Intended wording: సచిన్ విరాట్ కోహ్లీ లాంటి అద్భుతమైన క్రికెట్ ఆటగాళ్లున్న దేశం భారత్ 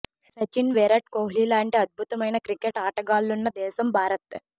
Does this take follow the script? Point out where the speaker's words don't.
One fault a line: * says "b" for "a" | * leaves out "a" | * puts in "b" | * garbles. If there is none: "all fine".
all fine